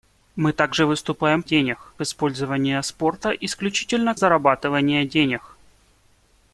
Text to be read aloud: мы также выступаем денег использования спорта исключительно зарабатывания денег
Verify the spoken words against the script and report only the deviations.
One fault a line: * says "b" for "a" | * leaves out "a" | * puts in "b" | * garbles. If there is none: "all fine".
all fine